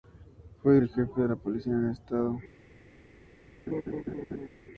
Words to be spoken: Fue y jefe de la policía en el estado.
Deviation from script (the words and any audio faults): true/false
true